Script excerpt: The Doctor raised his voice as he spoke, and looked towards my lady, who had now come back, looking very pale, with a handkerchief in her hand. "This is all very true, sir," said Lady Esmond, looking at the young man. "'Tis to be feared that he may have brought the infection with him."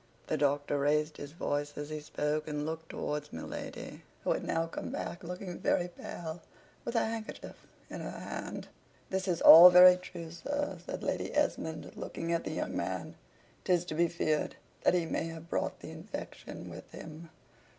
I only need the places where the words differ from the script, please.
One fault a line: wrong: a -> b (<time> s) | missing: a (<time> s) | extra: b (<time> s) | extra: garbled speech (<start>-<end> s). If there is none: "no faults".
no faults